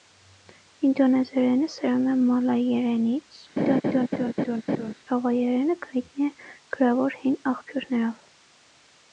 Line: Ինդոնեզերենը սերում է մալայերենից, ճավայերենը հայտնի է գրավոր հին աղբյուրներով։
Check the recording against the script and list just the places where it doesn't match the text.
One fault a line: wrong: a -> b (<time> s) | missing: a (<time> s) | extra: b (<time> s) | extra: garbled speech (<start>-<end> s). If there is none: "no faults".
no faults